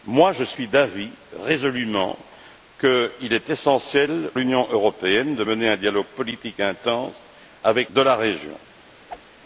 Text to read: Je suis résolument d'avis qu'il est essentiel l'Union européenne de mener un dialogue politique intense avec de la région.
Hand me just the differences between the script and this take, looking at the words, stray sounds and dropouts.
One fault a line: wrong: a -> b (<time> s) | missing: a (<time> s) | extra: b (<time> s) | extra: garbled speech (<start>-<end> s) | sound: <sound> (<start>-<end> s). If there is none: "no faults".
sound: whoosh (9.1-9.2 s)